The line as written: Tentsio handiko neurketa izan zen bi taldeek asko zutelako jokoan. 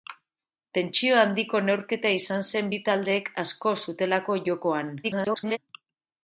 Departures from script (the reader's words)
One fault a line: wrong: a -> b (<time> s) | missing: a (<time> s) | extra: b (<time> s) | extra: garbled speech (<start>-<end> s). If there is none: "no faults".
extra: garbled speech (5.0-5.6 s)